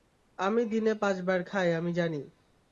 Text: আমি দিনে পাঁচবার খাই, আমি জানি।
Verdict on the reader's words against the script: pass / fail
pass